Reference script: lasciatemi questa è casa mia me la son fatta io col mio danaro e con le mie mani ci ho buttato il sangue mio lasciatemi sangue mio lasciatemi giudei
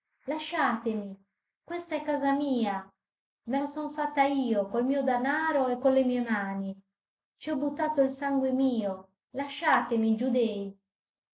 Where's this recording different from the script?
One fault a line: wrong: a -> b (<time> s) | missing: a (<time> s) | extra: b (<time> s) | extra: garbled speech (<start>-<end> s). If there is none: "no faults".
missing: sangue mio lasciatemi (10.1 s)